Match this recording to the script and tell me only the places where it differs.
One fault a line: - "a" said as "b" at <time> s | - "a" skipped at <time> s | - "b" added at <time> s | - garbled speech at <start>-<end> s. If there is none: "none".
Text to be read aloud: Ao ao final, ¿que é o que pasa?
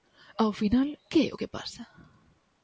- "ao" skipped at 0.5 s